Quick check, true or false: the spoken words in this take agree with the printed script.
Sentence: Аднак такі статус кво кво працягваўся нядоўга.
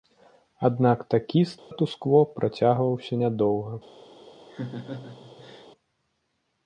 false